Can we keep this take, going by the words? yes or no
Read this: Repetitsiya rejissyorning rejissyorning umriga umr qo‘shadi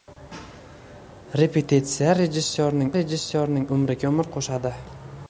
yes